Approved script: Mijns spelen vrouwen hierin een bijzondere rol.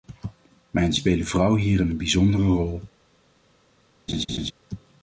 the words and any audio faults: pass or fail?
fail